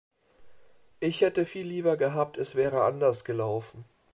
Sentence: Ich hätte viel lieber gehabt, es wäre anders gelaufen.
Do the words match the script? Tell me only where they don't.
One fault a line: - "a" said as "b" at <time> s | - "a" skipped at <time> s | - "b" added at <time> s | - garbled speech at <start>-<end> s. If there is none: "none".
none